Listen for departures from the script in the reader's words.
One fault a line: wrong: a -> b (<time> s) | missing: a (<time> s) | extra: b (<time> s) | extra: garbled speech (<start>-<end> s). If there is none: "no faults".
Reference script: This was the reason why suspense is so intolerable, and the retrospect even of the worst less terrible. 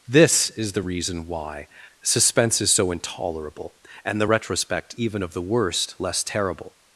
wrong: was -> is (0.5 s)